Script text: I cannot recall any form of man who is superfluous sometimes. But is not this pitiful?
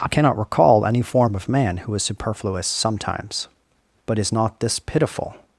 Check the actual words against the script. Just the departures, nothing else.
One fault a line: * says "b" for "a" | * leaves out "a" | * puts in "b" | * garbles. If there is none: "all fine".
all fine